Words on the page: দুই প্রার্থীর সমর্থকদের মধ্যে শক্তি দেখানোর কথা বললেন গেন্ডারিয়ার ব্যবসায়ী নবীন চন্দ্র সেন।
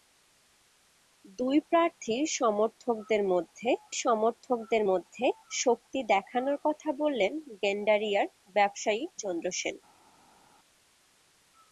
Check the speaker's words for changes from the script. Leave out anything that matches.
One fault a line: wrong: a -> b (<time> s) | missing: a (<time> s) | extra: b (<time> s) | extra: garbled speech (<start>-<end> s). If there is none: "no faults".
extra: সমর্থকদের মধ্যে (4.0 s)
missing: নবীন (9.0 s)